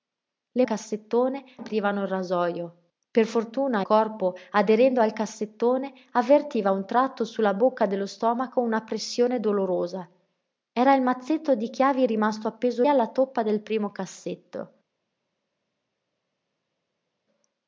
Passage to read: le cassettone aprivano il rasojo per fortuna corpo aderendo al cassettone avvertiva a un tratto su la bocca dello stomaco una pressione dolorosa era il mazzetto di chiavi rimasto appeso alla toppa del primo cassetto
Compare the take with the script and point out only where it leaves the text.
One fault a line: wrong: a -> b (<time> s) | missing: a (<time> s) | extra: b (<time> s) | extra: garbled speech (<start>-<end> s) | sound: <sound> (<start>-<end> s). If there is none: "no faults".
no faults